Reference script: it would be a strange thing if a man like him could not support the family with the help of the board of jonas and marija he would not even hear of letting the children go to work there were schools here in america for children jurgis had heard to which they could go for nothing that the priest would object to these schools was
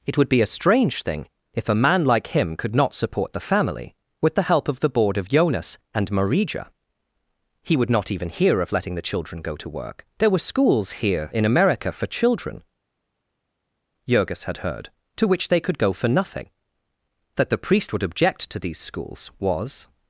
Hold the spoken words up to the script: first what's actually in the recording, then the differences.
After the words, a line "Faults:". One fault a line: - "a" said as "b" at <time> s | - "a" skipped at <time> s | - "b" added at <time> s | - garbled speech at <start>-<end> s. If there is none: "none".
it would be a strange thing if a man like him could not support the family with the help of the board of jonas and marija he would not even hear of letting the children go to work there were schools here in america for children jurgis had heard to which they could go for nothing that the priest would object to these schools was
Faults:
none